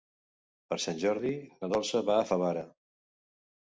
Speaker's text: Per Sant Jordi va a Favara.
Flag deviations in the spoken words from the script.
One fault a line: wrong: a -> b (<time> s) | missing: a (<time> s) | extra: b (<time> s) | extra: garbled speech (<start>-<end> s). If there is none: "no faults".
extra: na Dolça (1.6 s)